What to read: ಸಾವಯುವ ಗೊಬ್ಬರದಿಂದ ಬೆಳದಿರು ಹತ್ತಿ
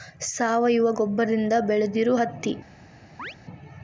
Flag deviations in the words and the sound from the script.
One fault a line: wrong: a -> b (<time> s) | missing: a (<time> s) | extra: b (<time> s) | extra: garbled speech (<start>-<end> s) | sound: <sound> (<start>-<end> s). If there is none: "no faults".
sound: chirp (3.2-3.3 s)